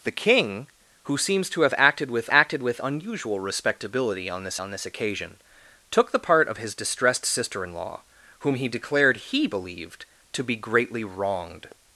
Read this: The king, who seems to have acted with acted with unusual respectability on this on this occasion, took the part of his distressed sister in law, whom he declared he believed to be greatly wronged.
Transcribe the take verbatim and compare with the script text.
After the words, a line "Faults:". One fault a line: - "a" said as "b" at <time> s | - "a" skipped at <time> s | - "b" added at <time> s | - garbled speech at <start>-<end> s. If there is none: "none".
The king, who seems to have acted with acted with unusual respectability on this on this occasion, took the part of his distressed sister in law, whom he declared he believed to be greatly wronged.
Faults:
none